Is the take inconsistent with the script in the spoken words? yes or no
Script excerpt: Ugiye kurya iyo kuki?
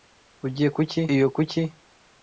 yes